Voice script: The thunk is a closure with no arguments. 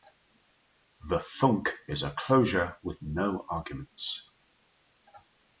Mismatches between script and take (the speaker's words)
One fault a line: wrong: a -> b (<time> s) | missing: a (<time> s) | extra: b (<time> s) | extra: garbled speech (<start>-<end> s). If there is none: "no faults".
no faults